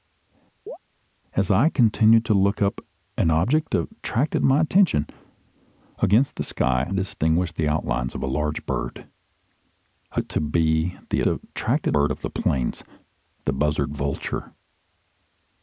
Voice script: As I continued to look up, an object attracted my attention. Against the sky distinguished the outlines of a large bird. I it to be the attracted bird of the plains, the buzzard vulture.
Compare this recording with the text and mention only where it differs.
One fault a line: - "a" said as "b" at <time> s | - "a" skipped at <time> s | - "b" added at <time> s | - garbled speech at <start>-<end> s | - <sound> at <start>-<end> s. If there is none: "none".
- chirp at 0.7-0.8 s